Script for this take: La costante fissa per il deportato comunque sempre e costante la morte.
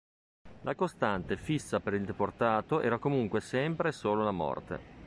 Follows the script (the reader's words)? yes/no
no